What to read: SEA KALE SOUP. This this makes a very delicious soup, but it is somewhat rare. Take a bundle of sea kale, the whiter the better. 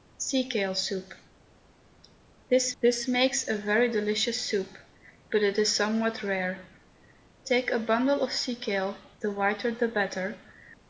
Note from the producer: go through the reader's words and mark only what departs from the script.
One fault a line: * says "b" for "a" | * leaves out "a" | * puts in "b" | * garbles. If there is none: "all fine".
all fine